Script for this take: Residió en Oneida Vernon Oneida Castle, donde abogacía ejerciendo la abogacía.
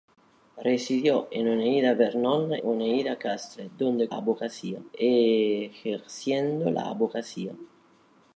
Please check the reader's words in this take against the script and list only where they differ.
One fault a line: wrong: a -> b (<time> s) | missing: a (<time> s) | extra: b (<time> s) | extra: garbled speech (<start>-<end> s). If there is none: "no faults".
no faults